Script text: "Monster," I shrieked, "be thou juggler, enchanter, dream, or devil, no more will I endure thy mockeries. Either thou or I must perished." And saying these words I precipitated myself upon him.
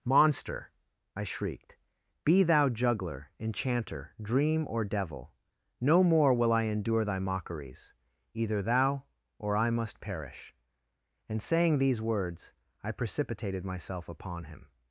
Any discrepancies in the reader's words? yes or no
yes